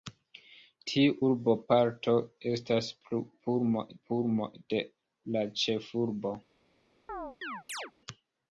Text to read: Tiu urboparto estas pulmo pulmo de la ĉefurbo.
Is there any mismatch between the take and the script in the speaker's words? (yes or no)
no